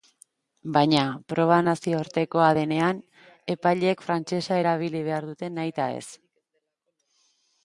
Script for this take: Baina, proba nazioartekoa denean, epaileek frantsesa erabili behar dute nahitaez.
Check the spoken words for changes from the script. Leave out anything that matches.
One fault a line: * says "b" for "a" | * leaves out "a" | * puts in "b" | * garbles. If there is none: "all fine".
all fine